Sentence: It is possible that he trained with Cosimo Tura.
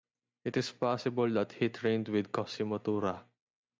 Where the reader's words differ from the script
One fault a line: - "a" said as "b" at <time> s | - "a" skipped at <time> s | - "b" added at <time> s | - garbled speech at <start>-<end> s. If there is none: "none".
none